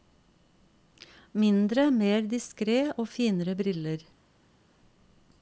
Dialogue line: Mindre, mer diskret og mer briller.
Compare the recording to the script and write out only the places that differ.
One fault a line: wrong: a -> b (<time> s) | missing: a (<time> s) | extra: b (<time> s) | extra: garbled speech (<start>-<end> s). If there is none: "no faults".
wrong: mer -> finere (3.1 s)